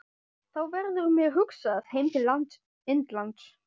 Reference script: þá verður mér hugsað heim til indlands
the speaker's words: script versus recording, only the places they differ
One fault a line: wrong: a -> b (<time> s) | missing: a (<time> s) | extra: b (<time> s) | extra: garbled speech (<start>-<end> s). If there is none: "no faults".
no faults